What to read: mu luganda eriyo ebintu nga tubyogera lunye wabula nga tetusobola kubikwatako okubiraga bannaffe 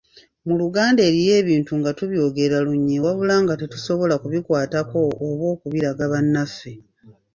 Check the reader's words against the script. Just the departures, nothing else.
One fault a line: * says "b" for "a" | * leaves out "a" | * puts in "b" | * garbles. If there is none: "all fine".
* puts in "oba"